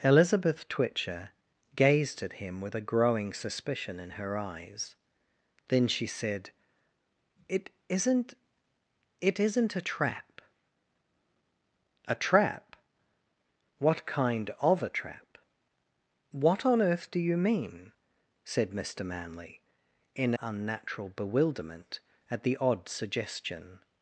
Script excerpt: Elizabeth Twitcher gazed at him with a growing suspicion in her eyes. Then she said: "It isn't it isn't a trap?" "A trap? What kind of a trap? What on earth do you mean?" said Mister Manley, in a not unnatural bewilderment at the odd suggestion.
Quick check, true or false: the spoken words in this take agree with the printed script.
false